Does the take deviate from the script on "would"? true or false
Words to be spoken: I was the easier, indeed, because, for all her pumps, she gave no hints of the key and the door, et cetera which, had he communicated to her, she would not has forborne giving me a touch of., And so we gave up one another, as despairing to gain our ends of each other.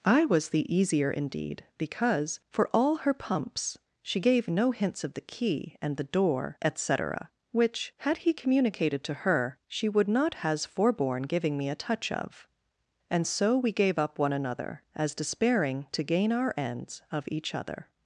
false